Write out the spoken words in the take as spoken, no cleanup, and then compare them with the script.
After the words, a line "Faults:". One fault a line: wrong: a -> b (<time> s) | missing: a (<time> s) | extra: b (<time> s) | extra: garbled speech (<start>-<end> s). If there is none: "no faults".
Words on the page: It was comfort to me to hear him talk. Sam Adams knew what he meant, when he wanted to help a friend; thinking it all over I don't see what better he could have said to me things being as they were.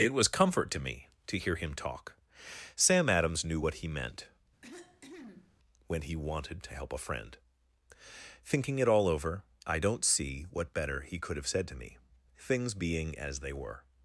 It was comfort to me to hear him talk. Sam Adams knew what he meant, when he wanted to help a friend; thinking it all over I don't see what better he could have said to me things being as they were.
Faults:
no faults